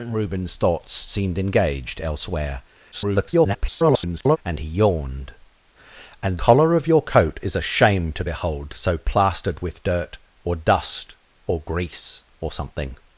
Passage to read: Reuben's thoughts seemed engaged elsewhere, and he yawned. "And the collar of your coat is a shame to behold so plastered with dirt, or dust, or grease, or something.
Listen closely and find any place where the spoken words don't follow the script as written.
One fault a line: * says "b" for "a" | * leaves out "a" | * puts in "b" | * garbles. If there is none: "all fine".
* garbles
* leaves out "the"